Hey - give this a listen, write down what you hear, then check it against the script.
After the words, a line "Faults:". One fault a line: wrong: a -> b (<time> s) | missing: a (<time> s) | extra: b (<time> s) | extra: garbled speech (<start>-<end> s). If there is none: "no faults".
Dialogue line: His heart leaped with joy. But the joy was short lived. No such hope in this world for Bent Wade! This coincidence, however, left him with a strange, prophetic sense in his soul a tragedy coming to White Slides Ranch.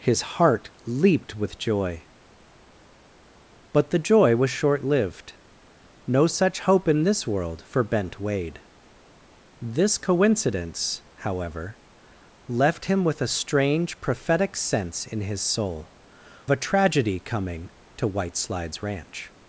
His heart leaped with joy. But the joy was short lived. No such hope in this world for Bent Wade! This coincidence, however, left him with a strange, prophetic sense in his soul a tragedy coming to White Slides Ranch.
Faults:
no faults